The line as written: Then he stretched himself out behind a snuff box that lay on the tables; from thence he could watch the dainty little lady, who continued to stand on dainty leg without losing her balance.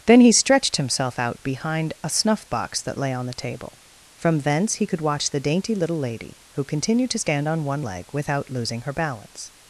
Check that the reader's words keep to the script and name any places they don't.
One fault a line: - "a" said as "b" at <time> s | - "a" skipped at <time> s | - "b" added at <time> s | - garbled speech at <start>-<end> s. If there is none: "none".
- "tables" said as "table" at 3.3 s
- "dainty" said as "one" at 7.6 s